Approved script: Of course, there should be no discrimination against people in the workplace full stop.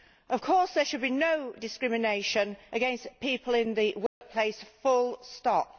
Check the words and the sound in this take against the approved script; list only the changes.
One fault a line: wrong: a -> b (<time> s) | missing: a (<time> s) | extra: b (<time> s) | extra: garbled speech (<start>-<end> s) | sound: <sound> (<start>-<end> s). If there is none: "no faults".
sound: dropout (4.1-4.2 s)